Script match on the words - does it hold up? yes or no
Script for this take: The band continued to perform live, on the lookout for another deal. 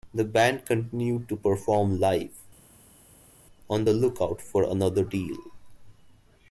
yes